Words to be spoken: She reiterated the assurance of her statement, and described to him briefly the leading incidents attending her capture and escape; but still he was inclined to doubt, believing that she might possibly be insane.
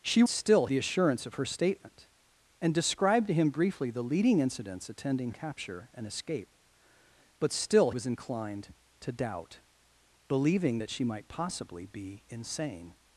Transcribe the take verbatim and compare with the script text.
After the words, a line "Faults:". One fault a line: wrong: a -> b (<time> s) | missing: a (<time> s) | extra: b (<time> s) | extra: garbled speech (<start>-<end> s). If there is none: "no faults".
She still the assurance of her statement, and described to him briefly the leading incidents attending capture and escape; but still was inclined to doubt, believing that she might possibly be insane.
Faults:
wrong: reiterated -> still (0.3 s)
missing: her (5.3 s)
missing: he (7.9 s)